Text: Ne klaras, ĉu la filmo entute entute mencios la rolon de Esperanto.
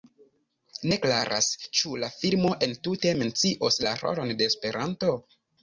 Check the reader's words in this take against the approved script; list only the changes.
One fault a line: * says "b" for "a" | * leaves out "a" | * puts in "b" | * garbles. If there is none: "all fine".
* leaves out "entute"